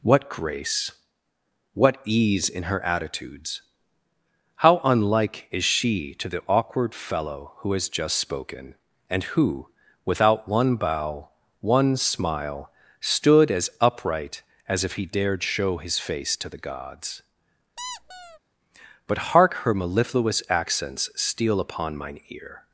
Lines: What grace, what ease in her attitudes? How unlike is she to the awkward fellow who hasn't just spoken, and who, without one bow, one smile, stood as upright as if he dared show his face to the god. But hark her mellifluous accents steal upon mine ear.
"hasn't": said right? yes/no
no